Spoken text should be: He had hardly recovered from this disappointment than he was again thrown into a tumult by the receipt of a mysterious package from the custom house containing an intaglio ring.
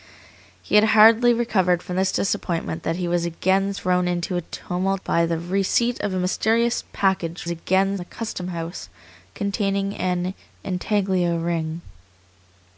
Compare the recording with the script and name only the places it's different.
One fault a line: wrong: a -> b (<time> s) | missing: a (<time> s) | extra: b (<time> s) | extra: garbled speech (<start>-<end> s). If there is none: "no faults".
wrong: from -> again (7.5 s)